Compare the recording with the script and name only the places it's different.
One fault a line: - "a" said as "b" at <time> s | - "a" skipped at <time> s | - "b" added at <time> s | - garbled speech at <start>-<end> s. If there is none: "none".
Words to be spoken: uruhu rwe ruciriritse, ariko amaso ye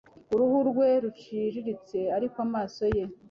none